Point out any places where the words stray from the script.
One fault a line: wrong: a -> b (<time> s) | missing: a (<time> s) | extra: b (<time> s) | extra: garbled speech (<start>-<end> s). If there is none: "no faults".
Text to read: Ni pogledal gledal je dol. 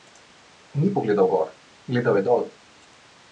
extra: gor (1.3 s)